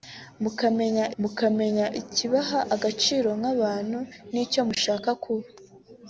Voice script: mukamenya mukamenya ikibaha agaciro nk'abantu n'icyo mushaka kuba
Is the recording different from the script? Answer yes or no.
no